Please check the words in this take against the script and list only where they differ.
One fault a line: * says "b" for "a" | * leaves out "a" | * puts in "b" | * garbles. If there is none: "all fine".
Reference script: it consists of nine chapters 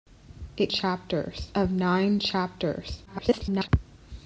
* says "chapters" for "consists"
* garbles